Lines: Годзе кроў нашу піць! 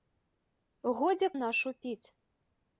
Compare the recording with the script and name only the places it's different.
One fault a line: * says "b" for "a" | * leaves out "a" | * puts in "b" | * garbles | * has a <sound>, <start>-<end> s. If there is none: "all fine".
* leaves out "кроў"